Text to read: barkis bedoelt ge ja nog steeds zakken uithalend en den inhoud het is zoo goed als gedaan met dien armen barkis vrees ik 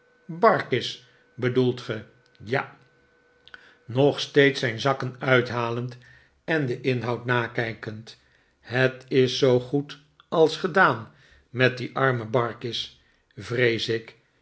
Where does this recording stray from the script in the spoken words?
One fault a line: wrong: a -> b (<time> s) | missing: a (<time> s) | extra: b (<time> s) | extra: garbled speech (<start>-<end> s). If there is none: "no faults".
extra: zijn (4.6 s)
extra: nakijkend (7.2 s)